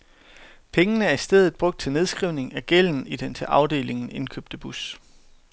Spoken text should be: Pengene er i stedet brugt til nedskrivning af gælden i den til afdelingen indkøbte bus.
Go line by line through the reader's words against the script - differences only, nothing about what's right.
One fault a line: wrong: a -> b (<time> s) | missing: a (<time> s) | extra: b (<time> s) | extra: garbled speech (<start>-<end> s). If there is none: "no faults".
no faults